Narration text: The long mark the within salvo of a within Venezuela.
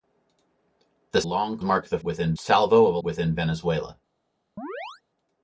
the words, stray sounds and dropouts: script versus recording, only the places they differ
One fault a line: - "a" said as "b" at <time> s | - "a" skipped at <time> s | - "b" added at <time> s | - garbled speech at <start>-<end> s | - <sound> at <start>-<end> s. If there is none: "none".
- chirp at 4.6-5.0 s